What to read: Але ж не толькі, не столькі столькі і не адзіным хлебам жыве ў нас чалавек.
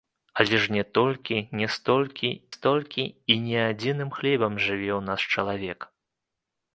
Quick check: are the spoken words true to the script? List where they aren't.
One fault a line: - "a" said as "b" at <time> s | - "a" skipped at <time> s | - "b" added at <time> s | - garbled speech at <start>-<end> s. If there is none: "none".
none